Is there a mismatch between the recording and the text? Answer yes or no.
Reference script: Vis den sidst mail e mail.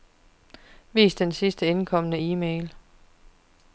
yes